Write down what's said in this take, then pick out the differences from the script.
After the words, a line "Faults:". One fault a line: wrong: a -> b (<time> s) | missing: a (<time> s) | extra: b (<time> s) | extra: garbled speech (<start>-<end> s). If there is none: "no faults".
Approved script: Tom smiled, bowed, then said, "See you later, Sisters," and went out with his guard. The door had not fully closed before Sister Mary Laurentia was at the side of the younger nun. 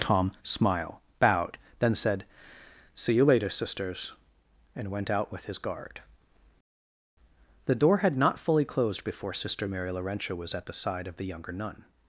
Tom smile, bowed, then said, "See you later, Sisters," and went out with his guard. The door had not fully closed before Sister Mary Laurentia was at the side of the younger nun.
Faults:
wrong: smiled -> smile (0.4 s)